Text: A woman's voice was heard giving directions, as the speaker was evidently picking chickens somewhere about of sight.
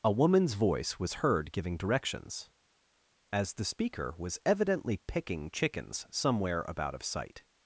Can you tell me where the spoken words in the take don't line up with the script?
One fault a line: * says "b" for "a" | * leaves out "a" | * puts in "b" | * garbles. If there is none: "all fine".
all fine